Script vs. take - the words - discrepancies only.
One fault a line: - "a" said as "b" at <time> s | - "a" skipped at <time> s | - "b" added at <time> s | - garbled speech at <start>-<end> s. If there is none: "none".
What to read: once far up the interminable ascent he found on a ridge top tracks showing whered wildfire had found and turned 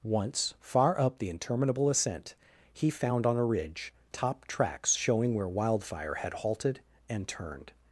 - "whered" said as "where" at 5.3 s
- "found" said as "halted" at 6.3 s